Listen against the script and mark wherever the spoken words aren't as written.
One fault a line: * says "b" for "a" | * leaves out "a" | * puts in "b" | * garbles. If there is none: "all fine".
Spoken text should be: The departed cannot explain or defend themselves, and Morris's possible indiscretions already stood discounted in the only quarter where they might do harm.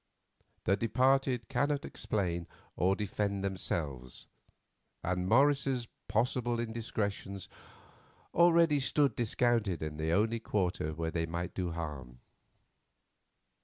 all fine